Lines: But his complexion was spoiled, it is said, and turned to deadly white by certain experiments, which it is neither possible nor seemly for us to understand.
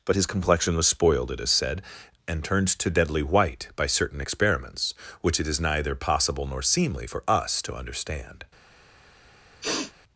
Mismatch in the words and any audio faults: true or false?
true